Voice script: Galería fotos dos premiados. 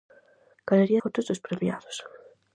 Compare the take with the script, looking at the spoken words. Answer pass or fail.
pass